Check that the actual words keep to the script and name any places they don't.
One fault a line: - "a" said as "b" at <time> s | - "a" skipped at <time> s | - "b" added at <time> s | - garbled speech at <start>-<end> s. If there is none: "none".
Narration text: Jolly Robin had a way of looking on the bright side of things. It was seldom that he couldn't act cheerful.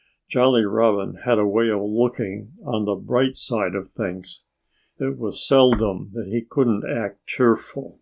none